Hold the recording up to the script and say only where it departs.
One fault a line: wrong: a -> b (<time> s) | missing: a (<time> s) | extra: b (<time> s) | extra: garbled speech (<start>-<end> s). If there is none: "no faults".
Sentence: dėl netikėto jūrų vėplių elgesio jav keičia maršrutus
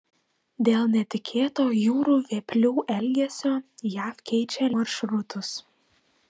no faults